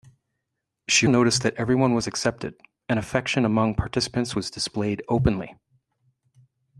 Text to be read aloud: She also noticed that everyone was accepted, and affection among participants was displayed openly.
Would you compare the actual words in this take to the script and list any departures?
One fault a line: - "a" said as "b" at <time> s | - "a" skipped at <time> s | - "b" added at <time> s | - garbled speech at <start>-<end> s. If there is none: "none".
- "also" skipped at 1.1 s